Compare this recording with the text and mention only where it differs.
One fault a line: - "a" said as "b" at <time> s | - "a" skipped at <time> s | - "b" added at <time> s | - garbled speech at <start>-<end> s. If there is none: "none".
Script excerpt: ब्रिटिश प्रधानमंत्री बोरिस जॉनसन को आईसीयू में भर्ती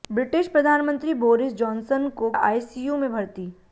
none